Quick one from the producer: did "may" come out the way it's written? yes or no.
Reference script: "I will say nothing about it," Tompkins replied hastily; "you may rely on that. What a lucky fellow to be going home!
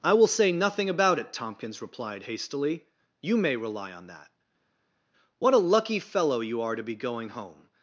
yes